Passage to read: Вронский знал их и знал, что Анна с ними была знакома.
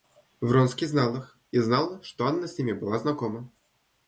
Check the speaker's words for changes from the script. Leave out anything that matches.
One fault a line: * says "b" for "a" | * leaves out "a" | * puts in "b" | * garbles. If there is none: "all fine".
all fine